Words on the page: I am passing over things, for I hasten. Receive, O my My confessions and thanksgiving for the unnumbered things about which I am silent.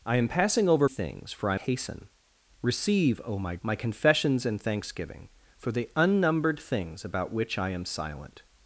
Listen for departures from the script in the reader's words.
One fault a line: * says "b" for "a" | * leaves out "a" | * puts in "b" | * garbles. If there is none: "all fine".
all fine